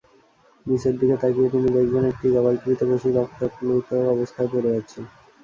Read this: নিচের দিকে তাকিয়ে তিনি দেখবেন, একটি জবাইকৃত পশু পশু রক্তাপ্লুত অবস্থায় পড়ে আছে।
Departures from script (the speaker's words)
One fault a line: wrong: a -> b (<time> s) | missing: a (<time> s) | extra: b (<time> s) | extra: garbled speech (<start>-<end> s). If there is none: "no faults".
missing: পশু (3.1 s)